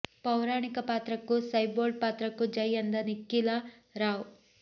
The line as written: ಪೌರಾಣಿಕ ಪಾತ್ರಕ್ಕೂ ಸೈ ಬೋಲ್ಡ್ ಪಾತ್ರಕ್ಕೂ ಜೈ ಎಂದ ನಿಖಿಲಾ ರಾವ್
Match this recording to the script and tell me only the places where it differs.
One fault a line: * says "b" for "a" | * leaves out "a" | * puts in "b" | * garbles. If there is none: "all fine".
all fine